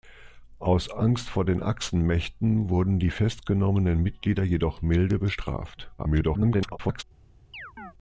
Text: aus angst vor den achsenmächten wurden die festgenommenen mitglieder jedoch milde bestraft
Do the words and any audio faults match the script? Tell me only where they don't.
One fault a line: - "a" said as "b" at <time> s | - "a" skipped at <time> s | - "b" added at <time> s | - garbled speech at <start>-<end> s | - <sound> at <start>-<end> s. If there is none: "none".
- garbled speech at 6.0-7.0 s
- chirp at 7.5-7.9 s